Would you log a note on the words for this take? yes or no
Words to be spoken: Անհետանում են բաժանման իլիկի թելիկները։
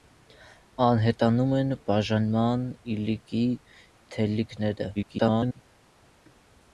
yes